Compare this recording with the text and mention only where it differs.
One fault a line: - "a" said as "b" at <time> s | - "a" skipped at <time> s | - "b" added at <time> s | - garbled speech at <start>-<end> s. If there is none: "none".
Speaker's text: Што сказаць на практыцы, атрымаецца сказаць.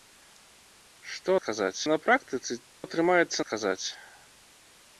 none